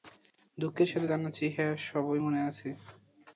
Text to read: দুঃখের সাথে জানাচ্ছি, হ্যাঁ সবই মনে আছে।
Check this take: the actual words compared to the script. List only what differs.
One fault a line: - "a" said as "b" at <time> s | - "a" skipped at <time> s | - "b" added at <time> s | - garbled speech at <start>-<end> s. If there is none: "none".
none